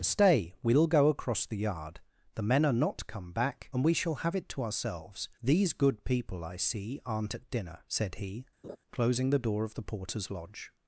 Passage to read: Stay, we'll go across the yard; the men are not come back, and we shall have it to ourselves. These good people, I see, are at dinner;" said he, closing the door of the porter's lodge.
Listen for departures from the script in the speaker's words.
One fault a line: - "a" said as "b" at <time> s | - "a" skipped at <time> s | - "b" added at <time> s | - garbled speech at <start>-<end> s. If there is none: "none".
- "are" said as "aren't" at 7.0 s